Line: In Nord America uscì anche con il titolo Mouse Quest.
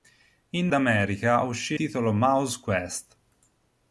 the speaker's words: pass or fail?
fail